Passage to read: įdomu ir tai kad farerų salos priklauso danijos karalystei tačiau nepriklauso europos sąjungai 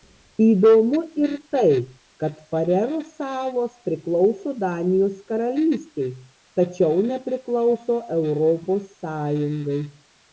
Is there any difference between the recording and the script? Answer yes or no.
no